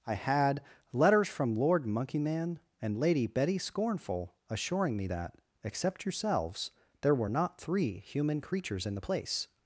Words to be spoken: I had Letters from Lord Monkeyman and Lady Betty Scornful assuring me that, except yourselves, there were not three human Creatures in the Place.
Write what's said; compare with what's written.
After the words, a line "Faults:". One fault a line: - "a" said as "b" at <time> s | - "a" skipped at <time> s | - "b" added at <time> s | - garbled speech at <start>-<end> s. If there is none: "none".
I had Letters from Lord Monkeyman and Lady Betty Scornful assuring me that, except yourselves, there were not three human Creatures in the Place.
Faults:
none